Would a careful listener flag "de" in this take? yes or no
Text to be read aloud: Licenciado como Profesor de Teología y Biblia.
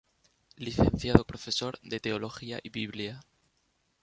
no